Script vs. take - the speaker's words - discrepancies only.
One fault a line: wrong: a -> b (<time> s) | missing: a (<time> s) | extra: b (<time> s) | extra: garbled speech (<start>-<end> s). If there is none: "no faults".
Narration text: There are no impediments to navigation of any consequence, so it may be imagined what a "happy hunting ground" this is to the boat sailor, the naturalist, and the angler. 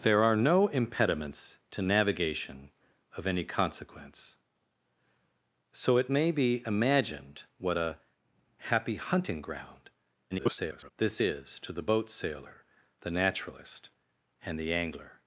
extra: garbled speech (10.3-10.9 s)